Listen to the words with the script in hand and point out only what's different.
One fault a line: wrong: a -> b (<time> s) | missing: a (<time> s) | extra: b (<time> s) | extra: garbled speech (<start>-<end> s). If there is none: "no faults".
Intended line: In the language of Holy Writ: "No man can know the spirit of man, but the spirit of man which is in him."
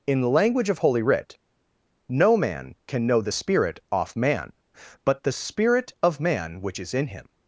wrong: of -> off (3.9 s)